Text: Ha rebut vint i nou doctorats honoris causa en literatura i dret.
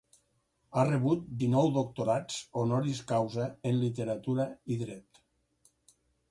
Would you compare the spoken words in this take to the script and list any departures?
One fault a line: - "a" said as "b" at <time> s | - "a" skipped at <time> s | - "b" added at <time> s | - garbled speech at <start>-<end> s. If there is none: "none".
- "vint" skipped at 1.3 s